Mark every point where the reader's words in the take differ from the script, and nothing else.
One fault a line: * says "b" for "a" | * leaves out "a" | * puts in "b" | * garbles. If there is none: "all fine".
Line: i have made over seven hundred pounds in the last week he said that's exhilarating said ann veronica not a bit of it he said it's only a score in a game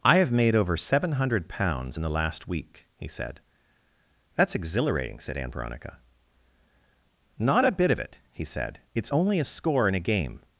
all fine